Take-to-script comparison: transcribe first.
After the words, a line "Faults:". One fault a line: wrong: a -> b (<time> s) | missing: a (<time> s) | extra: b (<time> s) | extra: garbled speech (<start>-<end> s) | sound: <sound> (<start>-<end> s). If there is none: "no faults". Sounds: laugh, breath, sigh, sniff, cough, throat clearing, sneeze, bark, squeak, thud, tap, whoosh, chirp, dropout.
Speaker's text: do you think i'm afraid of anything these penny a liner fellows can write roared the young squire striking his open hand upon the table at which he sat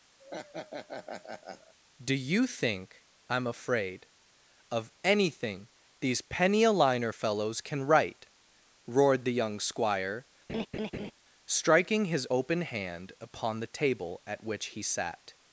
do you think i'm afraid of anything these penny a liner fellows can write roared the young squire striking his open hand upon the table at which he sat
Faults:
sound: laugh (0.2-1.7 s)
sound: laugh (10.5-11.1 s)